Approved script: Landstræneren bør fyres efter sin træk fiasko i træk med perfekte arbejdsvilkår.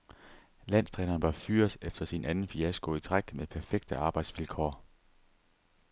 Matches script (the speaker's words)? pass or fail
fail